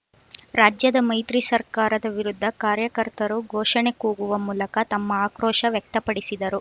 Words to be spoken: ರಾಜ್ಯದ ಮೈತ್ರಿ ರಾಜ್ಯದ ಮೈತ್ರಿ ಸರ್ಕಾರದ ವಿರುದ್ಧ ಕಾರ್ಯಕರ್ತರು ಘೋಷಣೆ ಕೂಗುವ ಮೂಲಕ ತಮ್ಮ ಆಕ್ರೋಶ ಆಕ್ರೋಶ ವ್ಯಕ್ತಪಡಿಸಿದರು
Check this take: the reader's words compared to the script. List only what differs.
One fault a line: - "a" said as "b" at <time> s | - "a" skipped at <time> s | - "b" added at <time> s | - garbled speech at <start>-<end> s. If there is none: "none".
- "ರಾಜ್ಯದ ಮೈತ್ರಿ" skipped at 1.4 s
- "ಆಕ್ರೋಶ" skipped at 5.7 s